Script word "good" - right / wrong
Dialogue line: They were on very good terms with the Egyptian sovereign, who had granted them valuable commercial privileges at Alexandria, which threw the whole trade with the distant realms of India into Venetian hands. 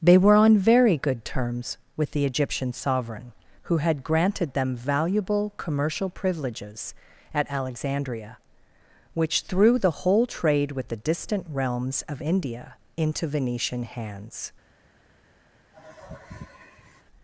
right